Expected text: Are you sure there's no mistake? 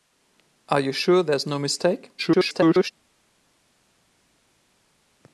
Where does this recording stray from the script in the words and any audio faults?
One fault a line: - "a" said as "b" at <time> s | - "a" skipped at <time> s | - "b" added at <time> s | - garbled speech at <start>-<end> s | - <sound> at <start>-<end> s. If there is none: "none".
- garbled speech at 2.2-2.9 s